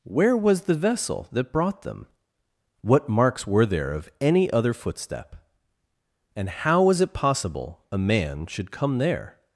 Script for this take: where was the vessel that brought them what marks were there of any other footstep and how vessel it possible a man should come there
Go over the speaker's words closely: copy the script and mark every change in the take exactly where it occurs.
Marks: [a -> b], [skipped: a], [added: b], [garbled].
where was the vessel that brought them what marks were there of any other footstep and how [vessel -> was] it possible a man should come there